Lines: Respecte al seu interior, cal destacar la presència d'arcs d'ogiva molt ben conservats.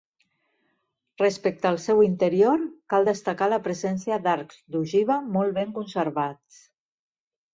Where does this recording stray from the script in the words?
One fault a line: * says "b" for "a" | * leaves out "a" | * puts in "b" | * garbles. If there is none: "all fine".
all fine